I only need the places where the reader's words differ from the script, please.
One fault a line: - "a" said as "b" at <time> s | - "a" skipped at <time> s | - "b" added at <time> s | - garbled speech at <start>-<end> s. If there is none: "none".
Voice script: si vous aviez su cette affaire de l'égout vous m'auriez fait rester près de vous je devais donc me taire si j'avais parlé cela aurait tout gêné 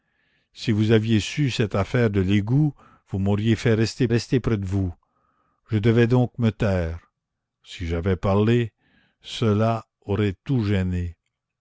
- "rester" added at 4.1 s